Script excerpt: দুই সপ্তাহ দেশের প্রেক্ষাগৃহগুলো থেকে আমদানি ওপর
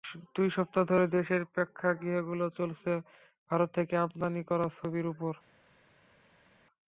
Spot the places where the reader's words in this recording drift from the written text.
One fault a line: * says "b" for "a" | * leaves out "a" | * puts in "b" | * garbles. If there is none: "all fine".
* puts in "ধরে"
* puts in "চলছে ভারত"
* puts in "করা ছবির"